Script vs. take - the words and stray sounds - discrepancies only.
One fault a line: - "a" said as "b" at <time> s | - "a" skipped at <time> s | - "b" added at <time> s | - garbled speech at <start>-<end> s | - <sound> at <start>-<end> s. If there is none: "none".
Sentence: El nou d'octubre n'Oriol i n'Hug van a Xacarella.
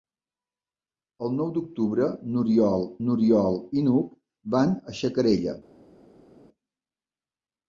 - "n'Oriol" added at 3.1 s